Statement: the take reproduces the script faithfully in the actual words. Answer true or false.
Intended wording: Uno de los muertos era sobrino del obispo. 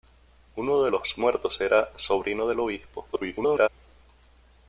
false